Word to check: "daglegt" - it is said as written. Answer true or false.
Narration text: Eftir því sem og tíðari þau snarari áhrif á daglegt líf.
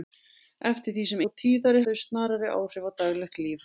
true